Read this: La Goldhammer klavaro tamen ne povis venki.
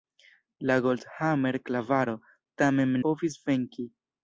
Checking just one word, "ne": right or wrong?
wrong